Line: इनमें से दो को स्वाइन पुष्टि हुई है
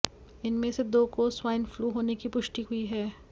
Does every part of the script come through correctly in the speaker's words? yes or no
no